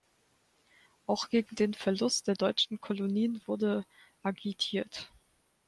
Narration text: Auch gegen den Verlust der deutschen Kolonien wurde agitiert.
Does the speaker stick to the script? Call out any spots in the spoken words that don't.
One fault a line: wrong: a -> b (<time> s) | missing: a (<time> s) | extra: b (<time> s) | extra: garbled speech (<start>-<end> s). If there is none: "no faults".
no faults